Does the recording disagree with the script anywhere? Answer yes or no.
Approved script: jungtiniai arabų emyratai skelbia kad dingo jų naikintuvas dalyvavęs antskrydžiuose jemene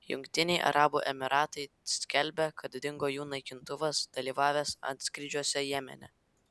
no